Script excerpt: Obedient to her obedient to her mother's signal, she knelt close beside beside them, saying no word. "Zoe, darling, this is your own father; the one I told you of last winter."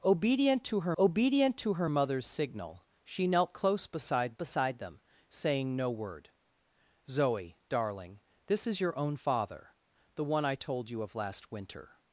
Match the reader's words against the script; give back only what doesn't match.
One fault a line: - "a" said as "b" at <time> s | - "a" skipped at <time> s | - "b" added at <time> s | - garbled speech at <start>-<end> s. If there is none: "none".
none